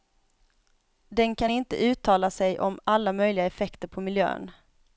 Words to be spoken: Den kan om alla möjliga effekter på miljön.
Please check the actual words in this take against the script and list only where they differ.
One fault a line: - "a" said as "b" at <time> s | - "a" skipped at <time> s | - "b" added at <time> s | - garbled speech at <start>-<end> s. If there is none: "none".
- "inte uttala sig" added at 1.5 s